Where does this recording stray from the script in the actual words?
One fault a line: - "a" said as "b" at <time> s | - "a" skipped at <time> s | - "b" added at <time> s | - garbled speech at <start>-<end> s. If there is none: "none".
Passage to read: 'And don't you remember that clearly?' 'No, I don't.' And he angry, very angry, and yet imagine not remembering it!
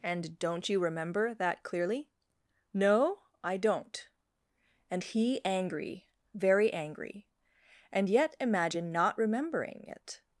none